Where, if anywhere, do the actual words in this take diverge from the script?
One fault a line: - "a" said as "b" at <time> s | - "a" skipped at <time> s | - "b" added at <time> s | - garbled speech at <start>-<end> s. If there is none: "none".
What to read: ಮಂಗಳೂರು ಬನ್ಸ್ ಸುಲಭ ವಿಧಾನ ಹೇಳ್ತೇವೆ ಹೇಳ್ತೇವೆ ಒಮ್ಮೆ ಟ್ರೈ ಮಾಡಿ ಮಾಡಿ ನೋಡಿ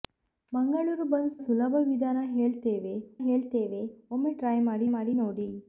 none